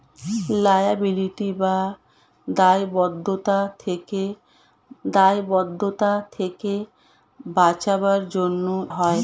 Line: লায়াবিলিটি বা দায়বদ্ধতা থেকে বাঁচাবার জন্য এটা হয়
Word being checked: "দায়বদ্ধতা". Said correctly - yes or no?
yes